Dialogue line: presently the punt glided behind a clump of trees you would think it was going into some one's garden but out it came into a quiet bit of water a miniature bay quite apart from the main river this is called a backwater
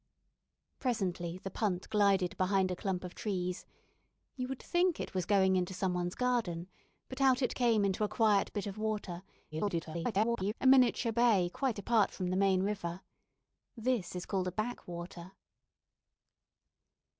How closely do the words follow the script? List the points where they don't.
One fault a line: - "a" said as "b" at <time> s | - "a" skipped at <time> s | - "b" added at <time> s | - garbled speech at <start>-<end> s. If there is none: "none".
- garbled speech at 9.5-10.5 s